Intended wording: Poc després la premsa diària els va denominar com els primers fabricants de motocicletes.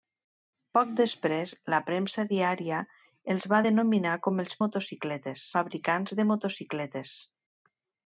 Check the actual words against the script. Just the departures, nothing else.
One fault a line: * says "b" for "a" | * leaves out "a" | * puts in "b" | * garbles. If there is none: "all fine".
* says "motocicletes" for "primers"